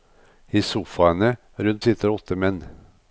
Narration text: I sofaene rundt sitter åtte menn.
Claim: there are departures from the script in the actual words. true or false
false